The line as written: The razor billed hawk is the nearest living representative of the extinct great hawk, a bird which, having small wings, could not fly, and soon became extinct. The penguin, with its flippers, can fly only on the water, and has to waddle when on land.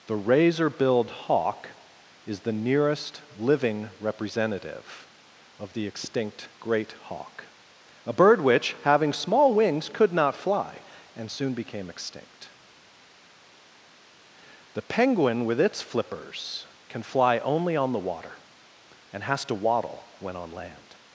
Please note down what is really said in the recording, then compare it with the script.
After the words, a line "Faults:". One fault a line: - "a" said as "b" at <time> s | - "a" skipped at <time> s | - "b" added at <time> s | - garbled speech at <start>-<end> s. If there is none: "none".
The razor billed hawk is the nearest living representative of the extinct great hawk, a bird which, having small wings, could not fly, and soon became extinct. The penguin, with its flippers, can fly only on the water, and has to waddle when on land.
Faults:
none